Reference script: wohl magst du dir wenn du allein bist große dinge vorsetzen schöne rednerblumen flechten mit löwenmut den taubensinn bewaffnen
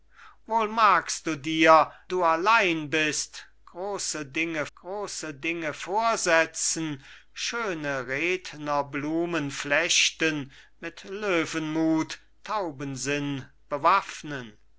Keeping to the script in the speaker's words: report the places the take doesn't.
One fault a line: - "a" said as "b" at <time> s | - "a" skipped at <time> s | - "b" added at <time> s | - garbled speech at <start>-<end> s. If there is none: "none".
- "wenn" skipped at 1.9 s
- "große dinge" added at 4.7 s
- "den" skipped at 12.2 s